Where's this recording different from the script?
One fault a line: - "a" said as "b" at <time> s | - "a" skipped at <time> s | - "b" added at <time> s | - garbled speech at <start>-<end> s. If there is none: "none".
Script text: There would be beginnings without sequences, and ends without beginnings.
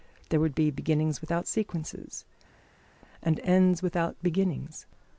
none